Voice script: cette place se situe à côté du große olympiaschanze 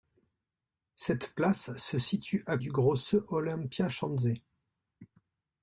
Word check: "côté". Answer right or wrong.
wrong